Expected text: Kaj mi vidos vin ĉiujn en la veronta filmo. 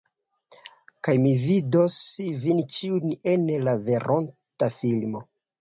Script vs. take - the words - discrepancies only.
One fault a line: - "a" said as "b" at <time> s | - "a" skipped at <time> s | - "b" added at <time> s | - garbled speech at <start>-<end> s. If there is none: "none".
none